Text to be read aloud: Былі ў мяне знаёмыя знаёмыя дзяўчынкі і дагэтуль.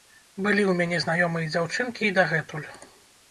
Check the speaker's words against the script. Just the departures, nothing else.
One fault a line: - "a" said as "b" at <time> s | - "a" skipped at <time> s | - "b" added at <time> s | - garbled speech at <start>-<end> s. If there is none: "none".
- "знаёмыя" skipped at 1.5 s